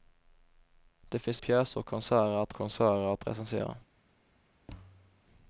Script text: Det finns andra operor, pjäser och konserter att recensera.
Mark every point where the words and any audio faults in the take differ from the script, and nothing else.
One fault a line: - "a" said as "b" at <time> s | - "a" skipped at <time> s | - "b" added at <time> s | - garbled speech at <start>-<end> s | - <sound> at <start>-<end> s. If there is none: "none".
- "andra operor pjäser och" said as "pjäser och konserter att" at 1.4 s
- thud at 4.7-5.2 s